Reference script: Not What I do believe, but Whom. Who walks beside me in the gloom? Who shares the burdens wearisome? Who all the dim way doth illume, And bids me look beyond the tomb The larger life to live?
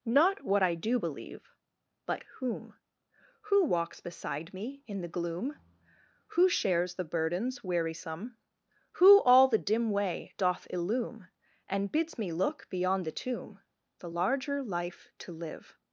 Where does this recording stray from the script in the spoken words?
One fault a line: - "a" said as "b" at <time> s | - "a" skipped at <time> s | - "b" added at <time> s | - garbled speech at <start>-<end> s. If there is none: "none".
none